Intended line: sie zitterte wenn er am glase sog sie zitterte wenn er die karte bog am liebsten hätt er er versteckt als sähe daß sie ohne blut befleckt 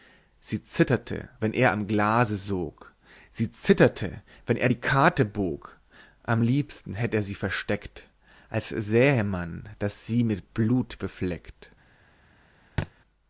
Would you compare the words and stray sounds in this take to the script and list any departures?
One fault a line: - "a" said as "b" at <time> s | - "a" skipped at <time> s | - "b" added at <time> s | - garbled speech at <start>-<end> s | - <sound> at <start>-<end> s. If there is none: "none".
- "er" said as "sie" at 7.2 s
- "man" added at 9.2 s
- "ohne" said as "mit" at 10.2 s
- thud at 12.8-12.9 s